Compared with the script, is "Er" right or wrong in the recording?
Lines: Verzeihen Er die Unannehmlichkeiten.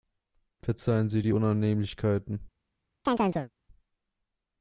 wrong